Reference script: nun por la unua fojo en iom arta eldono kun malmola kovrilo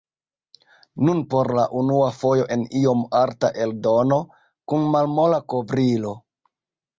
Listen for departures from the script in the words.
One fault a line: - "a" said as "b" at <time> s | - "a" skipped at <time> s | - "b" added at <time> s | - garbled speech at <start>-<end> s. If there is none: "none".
none